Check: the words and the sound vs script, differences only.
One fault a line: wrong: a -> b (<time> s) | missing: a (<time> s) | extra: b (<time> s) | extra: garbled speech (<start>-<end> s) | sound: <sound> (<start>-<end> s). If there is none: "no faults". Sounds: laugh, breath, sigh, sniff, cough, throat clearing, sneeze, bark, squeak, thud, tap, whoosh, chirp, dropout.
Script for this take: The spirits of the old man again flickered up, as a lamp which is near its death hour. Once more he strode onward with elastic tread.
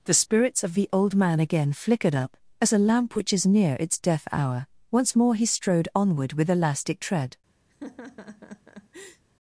sound: laugh (7.7-9.2 s)